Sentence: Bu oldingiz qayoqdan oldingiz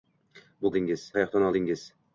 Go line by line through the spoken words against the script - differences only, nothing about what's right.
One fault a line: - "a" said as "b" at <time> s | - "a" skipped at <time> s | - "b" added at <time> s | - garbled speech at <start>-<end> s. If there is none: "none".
none